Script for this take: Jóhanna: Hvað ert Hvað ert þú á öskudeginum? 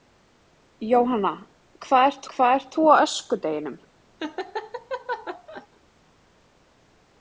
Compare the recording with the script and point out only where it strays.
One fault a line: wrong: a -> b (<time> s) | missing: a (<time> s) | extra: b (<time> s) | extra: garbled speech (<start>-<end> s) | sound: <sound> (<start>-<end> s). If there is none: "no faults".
sound: laugh (4.2-5.7 s)